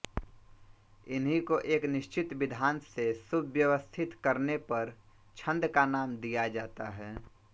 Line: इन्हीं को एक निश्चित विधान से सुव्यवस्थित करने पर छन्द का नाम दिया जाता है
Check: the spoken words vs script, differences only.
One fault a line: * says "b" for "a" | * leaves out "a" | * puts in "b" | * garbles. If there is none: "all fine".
all fine